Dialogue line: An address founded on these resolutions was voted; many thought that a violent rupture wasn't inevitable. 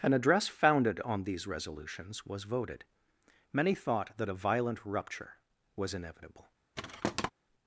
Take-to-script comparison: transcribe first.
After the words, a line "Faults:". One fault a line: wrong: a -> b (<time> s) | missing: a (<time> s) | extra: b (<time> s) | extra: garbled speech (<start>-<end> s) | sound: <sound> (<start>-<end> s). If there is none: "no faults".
An address founded on these resolutions was voted; many thought that a violent rupture was inevitable.
Faults:
wrong: wasn't -> was (5.8 s)
sound: thud (6.8-7.3 s)